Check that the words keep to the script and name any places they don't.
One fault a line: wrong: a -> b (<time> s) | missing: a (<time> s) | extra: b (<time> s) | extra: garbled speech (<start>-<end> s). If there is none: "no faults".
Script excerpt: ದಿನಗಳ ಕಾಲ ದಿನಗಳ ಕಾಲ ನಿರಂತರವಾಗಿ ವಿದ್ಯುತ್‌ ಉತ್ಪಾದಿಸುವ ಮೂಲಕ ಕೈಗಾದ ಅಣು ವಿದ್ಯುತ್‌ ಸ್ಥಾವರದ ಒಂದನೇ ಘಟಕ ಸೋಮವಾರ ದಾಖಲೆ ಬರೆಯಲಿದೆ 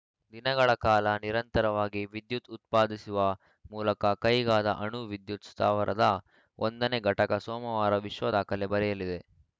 missing: ದಿನಗಳ ಕಾಲ (1.1 s)
extra: ವಿಶ್ವ (8.1 s)